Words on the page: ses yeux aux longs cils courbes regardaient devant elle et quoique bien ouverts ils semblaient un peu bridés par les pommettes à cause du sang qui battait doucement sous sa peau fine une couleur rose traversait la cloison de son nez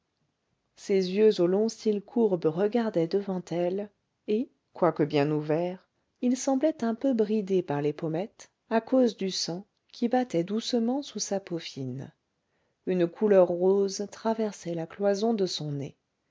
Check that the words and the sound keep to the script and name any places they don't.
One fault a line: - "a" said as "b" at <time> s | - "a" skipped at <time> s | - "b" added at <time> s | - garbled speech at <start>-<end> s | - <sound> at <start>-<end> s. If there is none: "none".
none